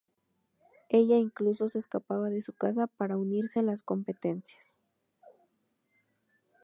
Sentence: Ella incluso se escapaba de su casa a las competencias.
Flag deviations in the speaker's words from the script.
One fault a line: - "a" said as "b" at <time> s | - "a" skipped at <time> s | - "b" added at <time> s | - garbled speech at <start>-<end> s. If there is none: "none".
- "para unirse" added at 2.9 s